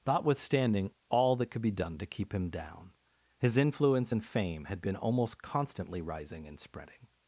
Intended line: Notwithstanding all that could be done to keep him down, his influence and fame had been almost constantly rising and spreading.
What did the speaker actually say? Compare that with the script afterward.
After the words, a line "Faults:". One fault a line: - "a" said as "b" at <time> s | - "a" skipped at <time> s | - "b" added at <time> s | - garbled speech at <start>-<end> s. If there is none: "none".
Notwithstanding all that could be done to keep him down, his influence and fame had been almost constantly rising and spreading.
Faults:
none